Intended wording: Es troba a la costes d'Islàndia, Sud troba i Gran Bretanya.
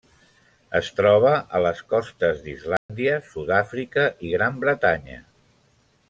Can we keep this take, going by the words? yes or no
no